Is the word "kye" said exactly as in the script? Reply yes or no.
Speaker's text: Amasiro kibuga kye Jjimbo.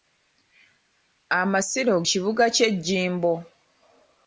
yes